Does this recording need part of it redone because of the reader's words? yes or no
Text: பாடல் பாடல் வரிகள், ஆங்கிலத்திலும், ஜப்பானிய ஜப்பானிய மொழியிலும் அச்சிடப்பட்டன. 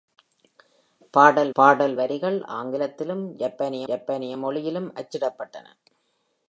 no